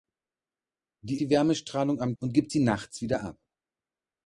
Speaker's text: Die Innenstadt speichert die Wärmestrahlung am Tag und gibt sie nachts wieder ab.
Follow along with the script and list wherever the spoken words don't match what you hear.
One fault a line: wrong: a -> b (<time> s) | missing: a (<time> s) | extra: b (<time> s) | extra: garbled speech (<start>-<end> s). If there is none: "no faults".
missing: Innenstadt speichert (1.2 s)
missing: Tag (2.2 s)